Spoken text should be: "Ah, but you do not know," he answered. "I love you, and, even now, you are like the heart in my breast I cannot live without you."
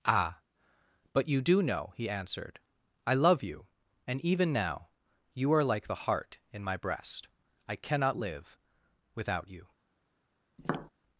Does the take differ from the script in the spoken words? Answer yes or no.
yes